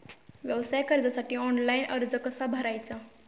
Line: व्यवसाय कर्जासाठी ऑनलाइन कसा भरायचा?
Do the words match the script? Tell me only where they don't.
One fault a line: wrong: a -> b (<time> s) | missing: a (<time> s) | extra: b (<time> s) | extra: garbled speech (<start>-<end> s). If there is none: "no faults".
extra: अर्ज (1.9 s)